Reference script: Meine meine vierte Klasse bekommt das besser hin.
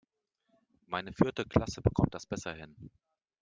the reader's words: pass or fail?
fail